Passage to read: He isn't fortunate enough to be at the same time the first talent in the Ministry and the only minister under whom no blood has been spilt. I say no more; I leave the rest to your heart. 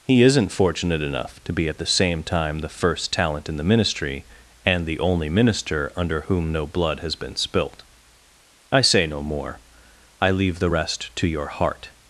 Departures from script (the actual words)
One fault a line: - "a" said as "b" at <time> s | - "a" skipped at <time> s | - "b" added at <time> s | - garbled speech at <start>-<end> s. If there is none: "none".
none